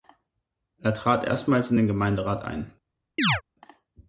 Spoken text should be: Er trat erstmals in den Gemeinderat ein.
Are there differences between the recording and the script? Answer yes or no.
no